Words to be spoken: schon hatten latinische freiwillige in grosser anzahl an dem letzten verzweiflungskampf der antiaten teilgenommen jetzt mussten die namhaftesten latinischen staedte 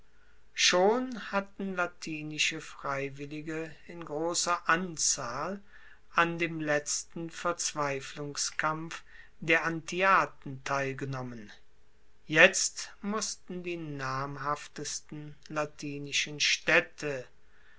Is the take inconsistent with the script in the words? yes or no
no